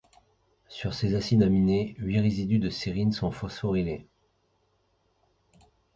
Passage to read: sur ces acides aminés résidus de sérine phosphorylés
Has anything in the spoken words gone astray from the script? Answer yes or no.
yes